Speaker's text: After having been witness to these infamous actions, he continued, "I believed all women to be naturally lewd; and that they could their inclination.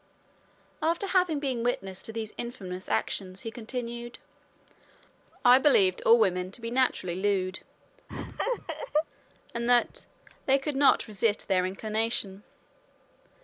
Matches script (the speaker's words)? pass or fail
fail